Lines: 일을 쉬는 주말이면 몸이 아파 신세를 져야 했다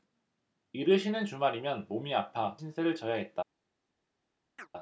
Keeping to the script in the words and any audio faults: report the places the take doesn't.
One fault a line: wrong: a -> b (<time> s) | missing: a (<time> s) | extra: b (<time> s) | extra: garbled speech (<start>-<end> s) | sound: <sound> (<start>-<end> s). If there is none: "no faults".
sound: chirp (4.6-4.7 s)